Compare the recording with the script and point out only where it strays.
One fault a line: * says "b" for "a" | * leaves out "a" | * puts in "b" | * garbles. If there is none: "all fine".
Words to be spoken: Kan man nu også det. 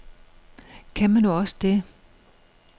all fine